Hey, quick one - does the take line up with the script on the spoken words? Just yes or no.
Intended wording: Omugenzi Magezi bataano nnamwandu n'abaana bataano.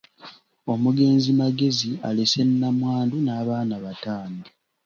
no